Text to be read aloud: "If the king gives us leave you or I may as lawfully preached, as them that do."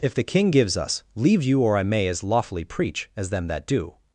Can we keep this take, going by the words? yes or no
no